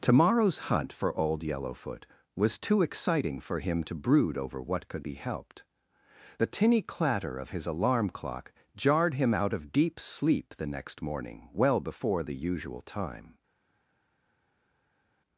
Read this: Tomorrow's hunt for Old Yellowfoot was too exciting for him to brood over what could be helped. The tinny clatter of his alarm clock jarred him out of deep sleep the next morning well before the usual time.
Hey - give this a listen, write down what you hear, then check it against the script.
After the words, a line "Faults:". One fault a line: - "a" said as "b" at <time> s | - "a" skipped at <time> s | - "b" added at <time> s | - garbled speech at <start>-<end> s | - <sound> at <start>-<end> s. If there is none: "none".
Tomorrow's hunt for Old Yellowfoot was too exciting for him to brood over what could be helped. The tinny clatter of his alarm clock jarred him out of deep sleep the next morning well before the usual time.
Faults:
none